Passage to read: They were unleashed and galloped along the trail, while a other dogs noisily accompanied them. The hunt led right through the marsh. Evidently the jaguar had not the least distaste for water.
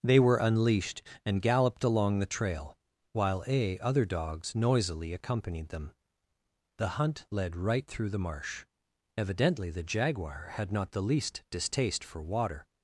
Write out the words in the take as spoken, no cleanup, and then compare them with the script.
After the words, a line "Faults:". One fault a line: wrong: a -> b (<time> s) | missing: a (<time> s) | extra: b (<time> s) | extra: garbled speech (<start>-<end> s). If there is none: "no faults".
They were unleashed and galloped along the trail, while a other dogs noisily accompanied them. The hunt led right through the marsh. Evidently the jaguar had not the least distaste for water.
Faults:
no faults